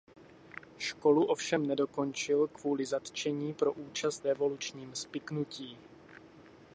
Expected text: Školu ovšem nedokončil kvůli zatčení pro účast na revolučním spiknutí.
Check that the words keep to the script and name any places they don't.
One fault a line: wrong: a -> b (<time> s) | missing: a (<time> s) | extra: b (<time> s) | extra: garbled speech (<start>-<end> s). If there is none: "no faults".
missing: na (4.3 s)